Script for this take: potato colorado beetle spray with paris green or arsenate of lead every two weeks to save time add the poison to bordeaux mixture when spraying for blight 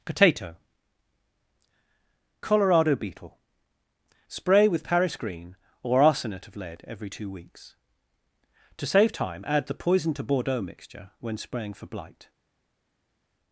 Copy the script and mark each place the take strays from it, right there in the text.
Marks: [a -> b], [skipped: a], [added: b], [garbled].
potato colorado beetle spray with paris green or arsenate of lead every two weeks to save time add the poison to bordeaux mixture when spraying for blight